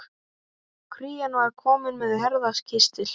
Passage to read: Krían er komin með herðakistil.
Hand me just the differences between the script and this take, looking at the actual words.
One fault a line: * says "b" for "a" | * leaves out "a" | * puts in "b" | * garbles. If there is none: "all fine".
* says "var" for "er"